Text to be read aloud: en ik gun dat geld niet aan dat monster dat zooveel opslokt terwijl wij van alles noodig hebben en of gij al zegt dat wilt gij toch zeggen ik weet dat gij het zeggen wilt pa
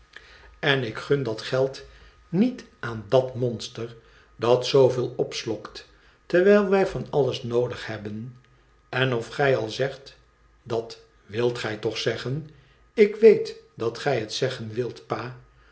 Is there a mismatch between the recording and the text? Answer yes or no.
no